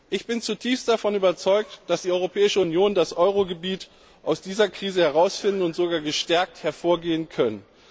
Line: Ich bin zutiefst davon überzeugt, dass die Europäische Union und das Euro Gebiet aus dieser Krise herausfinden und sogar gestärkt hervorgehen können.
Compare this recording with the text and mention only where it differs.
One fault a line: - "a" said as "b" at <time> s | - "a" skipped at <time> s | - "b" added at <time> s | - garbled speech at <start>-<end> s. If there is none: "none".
none